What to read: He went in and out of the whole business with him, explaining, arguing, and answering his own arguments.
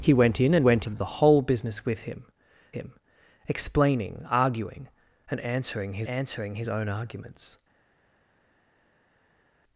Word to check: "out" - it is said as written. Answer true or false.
false